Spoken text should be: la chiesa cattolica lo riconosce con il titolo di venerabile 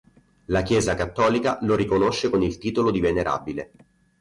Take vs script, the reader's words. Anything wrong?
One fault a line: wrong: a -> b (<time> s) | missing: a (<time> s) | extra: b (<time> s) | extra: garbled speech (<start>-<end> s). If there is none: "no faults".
no faults